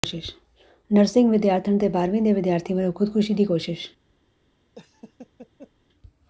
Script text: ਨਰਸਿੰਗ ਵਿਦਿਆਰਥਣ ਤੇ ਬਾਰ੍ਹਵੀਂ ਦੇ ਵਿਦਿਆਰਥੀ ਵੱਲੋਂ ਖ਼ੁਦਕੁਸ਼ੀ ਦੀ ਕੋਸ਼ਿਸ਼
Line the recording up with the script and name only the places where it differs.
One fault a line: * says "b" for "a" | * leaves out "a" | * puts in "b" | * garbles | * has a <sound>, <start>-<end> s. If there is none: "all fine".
* has a laugh, 4.8-5.7 s